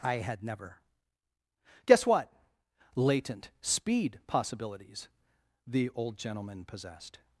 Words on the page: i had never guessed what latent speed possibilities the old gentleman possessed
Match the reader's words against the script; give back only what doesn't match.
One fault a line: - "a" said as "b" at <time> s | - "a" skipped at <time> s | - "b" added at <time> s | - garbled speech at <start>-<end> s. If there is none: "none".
- "guessed" said as "guess" at 1.9 s